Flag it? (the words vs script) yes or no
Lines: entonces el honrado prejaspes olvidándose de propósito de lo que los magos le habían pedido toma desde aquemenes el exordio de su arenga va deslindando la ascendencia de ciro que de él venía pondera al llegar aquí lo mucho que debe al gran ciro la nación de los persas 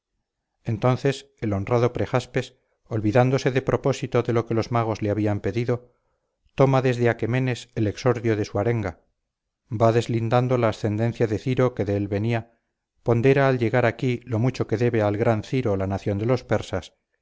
no